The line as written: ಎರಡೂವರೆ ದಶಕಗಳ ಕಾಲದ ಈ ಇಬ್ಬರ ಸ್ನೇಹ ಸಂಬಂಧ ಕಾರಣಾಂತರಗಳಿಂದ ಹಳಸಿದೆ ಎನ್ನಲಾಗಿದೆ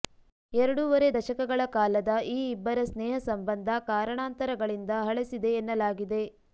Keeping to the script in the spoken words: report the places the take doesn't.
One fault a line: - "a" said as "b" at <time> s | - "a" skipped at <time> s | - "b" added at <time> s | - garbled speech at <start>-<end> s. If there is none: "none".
none